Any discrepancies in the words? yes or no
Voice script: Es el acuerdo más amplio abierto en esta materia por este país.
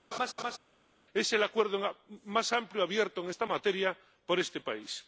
no